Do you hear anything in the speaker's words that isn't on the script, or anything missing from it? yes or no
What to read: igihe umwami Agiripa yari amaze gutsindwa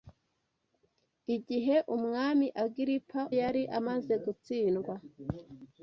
no